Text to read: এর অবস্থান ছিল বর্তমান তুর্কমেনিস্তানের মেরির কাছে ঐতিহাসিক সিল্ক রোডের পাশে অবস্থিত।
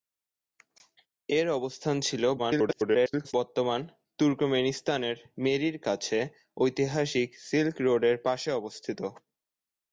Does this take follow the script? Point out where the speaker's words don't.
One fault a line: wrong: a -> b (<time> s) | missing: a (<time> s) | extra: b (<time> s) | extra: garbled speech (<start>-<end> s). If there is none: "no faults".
extra: garbled speech (2.4-3.3 s)